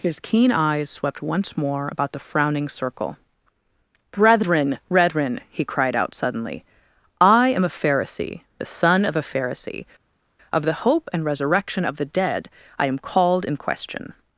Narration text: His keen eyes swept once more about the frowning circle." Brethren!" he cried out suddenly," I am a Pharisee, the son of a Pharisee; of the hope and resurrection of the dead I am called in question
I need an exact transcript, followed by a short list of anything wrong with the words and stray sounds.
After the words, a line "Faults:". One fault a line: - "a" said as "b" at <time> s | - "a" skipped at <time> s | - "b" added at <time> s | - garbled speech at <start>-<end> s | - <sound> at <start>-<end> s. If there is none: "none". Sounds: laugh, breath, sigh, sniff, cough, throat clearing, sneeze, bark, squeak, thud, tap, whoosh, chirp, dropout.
His keen eyes swept once more about the frowning circle." Brethren!" brethren he cried out suddenly," I am a Pharisee, the son of a Pharisee; of the hope and resurrection of the dead I am called in question
Faults:
- "brethren" added at 4.9 s